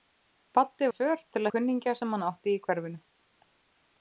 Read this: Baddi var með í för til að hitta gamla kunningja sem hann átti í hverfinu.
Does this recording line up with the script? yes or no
no